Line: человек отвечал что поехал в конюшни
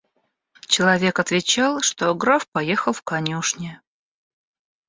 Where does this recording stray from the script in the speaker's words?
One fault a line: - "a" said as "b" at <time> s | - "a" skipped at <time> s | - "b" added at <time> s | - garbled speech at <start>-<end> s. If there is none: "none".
- "граф" added at 2.1 s